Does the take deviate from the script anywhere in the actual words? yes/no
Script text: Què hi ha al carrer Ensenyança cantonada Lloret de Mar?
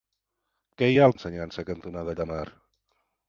yes